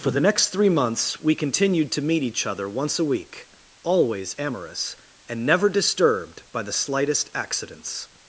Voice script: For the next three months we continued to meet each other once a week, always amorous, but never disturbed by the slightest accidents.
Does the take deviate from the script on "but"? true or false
true